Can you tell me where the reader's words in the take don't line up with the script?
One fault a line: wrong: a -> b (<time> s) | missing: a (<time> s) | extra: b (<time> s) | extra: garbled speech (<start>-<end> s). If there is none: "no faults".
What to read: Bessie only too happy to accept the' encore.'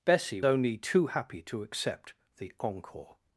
no faults